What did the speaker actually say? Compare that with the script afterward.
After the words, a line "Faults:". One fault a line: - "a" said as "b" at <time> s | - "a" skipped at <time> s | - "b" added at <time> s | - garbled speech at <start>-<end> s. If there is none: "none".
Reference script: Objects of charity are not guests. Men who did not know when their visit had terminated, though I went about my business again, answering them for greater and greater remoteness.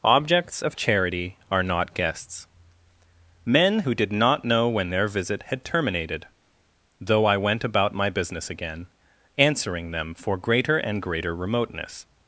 Objects of charity are not guests. Men who did not know when their visit had terminated, though I went about my business again, answering them for greater and greater remoteness.
Faults:
none